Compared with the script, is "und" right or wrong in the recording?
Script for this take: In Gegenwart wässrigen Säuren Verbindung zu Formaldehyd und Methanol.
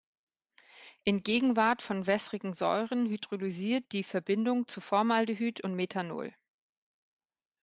right